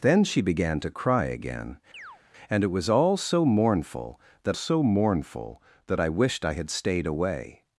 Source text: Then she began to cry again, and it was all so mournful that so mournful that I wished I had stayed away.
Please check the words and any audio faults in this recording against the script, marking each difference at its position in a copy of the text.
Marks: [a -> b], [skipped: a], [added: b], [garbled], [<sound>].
Then she began to cry again, [chirp] and it was all so mournful that so mournful that I wished I had stayed away.